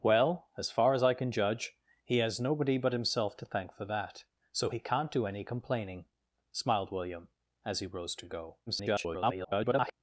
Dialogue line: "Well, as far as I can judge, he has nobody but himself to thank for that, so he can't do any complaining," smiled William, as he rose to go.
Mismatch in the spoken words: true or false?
true